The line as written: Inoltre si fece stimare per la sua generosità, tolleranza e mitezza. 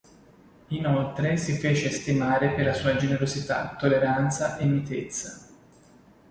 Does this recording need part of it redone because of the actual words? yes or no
no